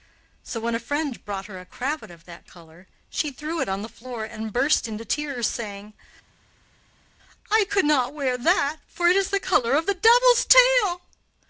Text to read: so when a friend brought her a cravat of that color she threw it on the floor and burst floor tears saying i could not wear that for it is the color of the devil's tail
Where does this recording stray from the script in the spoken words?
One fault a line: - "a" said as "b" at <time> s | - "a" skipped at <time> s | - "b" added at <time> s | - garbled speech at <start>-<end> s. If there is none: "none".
- "floor" said as "into" at 4.9 s